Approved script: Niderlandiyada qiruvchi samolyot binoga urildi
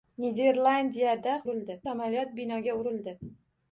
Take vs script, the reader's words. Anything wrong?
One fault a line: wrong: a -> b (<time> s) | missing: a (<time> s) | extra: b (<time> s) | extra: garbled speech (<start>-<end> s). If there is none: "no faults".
wrong: qiruvchi -> urildi (1.4 s)